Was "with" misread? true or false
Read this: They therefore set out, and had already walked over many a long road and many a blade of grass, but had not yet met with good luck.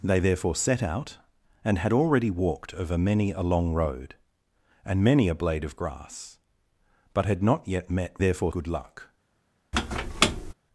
true